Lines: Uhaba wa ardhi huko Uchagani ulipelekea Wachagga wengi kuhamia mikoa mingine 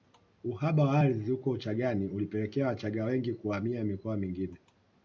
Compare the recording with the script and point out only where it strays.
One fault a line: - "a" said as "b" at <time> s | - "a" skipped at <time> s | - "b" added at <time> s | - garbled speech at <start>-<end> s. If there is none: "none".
none